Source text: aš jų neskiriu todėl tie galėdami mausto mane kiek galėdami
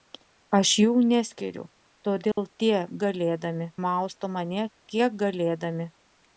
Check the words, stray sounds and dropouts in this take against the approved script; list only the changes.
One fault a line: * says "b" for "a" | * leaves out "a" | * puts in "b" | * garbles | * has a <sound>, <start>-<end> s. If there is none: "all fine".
* has a dropout, 2.3-2.4 s